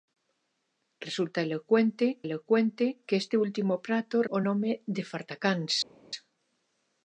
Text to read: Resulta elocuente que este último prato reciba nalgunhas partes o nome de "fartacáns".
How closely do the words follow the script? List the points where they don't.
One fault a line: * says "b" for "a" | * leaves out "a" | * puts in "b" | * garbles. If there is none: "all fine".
* puts in "elocuente"
* leaves out "reciba nalgunhas partes"